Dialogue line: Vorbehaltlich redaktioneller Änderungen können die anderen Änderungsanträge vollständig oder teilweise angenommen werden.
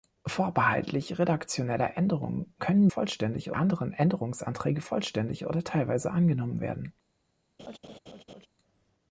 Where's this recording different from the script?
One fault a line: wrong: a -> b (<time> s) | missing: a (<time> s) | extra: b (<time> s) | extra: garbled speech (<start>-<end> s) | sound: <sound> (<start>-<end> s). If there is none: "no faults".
wrong: die -> vollständig (2.9 s)
sound: laugh (7.6-8.5 s)